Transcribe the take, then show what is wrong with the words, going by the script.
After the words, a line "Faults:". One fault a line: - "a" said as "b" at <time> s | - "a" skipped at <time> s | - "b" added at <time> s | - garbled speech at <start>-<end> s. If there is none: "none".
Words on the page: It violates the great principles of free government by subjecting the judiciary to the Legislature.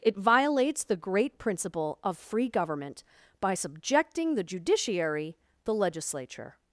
It violates the great principle of free government by subjecting the judiciary the Legislature.
Faults:
- "principles" said as "principle" at 1.4 s
- "to" skipped at 5.4 s